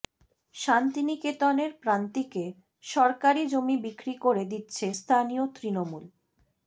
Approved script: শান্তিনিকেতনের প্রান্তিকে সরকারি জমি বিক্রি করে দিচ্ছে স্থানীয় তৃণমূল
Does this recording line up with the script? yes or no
yes